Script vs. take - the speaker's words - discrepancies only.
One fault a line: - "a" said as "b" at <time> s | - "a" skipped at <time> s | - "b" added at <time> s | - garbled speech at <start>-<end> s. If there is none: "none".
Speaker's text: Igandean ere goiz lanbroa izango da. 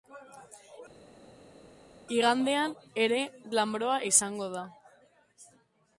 - "goiz" skipped at 3.2 s